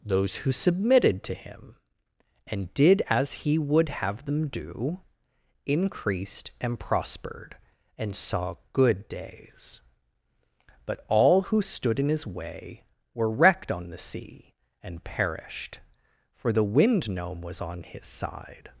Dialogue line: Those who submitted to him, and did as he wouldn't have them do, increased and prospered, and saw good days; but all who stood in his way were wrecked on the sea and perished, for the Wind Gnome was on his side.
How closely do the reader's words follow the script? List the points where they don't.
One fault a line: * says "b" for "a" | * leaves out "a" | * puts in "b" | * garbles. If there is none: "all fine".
* says "would" for "wouldn't"